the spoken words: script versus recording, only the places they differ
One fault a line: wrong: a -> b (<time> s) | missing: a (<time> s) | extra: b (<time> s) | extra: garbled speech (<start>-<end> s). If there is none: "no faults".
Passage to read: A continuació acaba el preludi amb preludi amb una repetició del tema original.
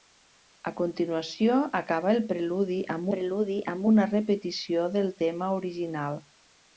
no faults